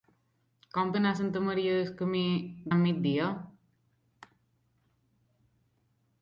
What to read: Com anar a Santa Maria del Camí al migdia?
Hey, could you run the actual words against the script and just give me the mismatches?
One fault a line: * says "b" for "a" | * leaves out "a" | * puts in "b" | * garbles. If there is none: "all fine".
all fine